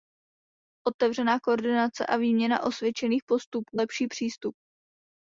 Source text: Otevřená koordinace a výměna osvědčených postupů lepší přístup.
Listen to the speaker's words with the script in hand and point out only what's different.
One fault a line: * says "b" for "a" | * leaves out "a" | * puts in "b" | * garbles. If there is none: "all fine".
all fine